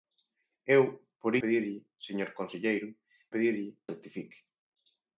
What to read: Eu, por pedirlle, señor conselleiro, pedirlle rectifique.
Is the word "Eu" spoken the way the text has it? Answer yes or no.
yes